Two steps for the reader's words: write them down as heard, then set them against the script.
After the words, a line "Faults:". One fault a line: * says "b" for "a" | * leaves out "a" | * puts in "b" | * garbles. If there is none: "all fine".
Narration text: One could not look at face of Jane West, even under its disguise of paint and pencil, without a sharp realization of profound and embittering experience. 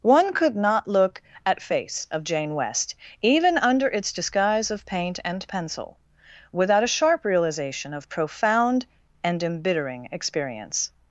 One could not look at face of Jane West, even under its disguise of paint and pencil, without a sharp realization of profound and embittering experience.
Faults:
all fine